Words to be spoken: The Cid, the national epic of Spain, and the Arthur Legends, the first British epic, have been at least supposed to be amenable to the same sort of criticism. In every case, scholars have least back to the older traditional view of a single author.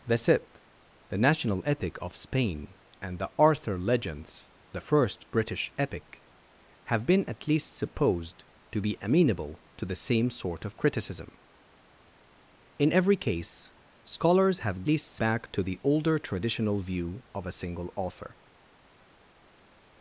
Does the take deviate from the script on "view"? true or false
false